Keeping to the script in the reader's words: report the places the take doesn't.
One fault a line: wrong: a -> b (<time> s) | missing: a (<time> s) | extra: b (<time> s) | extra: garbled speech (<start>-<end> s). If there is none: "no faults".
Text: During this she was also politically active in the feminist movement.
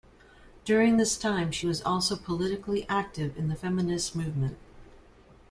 extra: time (1.2 s)